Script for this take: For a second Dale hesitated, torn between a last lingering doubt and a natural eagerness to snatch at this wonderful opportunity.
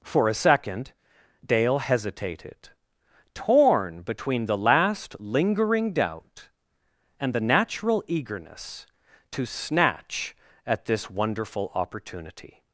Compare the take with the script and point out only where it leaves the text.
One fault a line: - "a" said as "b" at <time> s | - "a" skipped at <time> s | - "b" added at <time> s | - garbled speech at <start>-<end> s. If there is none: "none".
- "a" said as "the" at 4.5 s
- "a" said as "the" at 7.3 s